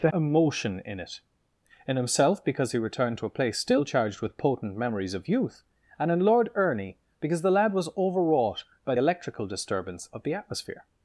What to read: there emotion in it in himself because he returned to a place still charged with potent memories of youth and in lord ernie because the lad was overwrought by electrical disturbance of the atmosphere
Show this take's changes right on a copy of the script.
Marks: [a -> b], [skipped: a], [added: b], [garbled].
there emotion in it in himself because he returned to a place still charged with potent memories of youth and in lord ernie because the lad was overwrought by electrical disturbance of the atmosphere